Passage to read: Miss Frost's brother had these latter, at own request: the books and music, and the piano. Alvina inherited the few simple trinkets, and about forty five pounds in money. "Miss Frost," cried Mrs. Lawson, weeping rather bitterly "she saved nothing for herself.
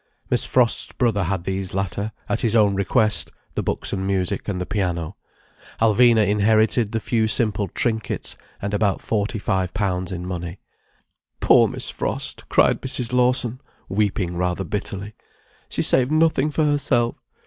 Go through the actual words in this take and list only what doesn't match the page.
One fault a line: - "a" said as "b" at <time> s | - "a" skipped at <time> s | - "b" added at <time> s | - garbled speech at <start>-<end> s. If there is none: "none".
- "his" added at 2.4 s
- "Poor" added at 11.4 s